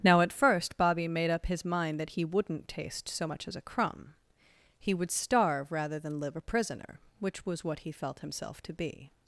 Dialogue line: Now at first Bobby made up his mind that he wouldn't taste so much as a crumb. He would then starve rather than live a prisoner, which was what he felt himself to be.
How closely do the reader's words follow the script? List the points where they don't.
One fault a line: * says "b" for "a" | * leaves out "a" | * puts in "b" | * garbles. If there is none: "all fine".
* leaves out "then"